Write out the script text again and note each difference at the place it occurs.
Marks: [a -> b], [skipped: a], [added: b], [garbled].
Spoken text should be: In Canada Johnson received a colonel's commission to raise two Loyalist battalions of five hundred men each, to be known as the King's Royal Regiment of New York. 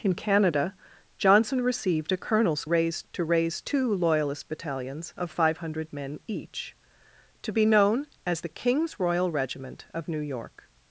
In Canada Johnson received a colonel's [commission -> raise] to raise two Loyalist battalions of five hundred men each, to be known as the King's Royal Regiment of New York.